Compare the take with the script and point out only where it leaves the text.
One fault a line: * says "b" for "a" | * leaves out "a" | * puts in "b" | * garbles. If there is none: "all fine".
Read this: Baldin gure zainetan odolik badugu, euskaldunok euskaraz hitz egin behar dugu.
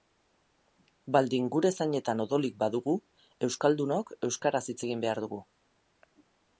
all fine